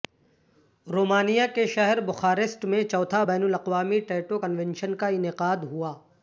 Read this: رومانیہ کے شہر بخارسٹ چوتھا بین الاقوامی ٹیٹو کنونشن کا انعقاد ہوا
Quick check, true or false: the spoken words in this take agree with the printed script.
false